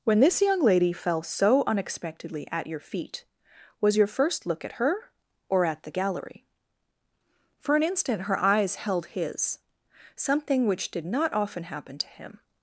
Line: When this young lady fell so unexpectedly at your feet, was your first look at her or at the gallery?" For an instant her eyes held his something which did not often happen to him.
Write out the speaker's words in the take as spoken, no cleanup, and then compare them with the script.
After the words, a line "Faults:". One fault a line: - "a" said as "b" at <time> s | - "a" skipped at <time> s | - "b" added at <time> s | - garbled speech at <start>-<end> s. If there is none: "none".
When this young lady fell so unexpectedly at your feet, was your first look at her or at the gallery?" For an instant her eyes held his something which did not often happen to him.
Faults:
none